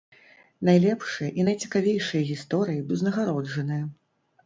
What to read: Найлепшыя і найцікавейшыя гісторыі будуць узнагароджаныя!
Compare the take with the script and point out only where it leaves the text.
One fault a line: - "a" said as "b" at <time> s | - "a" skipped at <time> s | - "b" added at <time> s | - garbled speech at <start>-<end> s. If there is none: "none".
- "будуць" skipped at 2.9 s